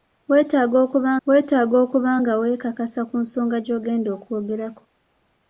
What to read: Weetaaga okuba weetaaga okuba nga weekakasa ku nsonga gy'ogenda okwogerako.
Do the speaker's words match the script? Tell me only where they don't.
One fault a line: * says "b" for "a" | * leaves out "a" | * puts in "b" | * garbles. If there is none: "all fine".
all fine